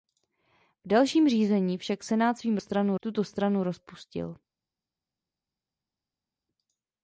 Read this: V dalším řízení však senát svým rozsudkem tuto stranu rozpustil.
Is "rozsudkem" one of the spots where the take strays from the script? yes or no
yes